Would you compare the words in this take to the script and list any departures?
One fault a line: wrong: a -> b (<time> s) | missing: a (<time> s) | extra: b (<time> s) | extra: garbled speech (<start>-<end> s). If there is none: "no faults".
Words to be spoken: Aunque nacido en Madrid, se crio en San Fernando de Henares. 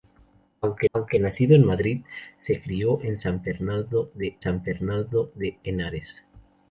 extra: aunque (0.9 s)
extra: San Fernando de (4.4 s)